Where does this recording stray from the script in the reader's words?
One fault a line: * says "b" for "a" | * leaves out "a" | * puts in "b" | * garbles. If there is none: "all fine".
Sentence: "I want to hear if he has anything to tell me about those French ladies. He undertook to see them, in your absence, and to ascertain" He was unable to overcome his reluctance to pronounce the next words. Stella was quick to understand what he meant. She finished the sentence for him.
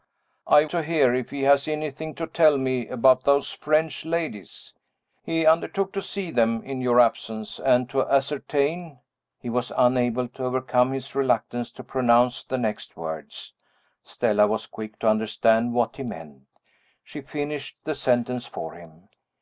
* leaves out "want"